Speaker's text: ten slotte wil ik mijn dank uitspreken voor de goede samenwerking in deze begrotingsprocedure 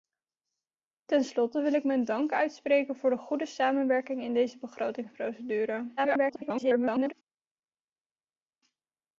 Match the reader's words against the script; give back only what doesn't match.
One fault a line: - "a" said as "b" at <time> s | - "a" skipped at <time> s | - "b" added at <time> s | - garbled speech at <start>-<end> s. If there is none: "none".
- garbled speech at 6.0-7.1 s